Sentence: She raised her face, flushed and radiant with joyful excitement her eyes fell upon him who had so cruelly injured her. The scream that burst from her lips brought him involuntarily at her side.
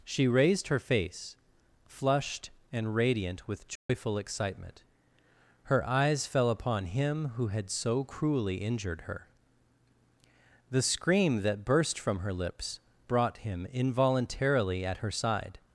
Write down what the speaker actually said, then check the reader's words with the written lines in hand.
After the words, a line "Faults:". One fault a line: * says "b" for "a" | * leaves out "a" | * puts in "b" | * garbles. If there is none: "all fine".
She raised her face, flushed and radiant with joyful excitement her eyes fell upon him who had so cruelly injured her. The scream that burst from her lips brought him involuntarily at her side.
Faults:
all fine